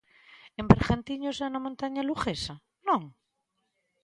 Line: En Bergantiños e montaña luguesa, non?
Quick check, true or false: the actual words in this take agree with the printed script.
false